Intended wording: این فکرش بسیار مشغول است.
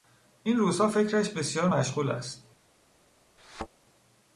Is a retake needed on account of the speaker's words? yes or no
yes